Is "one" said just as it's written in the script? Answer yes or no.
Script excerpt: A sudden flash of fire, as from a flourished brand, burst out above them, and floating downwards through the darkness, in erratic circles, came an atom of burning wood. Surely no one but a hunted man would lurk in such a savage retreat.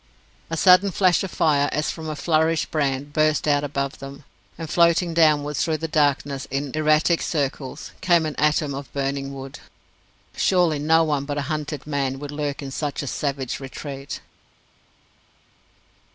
yes